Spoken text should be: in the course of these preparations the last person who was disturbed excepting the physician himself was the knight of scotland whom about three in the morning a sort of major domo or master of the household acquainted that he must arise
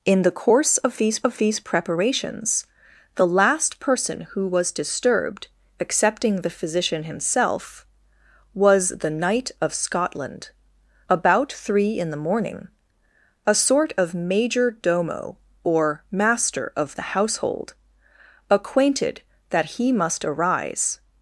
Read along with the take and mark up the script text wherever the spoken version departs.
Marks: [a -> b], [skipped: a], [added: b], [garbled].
in the course of these [added: of these] preparations the last person who was disturbed excepting the physician himself was the knight of scotland [skipped: whom] about three in the morning a sort of major domo or master of the household acquainted that he must arise